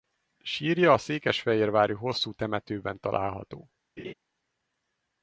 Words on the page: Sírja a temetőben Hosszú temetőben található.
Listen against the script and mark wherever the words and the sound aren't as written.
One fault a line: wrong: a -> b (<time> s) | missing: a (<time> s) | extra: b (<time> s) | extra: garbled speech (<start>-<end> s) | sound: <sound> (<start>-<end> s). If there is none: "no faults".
wrong: temetőben -> székesfehérvári (1.0 s)
sound: laugh (4.0-4.1 s)